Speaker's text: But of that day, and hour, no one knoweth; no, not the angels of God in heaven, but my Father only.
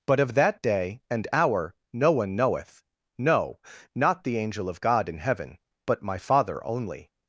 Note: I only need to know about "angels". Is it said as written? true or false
false